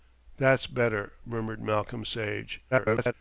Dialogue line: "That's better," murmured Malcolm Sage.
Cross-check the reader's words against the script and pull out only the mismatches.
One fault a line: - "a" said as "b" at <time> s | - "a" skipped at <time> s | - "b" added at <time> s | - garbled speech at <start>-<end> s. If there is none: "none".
- garbled speech at 2.7-3.1 s